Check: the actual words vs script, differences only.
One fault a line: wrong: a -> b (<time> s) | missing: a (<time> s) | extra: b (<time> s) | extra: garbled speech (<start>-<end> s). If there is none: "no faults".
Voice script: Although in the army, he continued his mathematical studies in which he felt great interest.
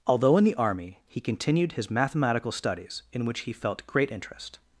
no faults